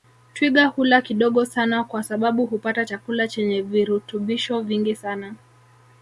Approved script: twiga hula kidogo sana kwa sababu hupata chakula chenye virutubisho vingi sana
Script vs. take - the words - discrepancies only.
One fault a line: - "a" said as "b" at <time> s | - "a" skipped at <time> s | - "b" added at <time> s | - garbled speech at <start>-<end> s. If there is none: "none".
none